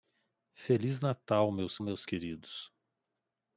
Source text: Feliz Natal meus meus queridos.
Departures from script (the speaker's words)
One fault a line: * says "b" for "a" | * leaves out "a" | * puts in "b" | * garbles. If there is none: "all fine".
all fine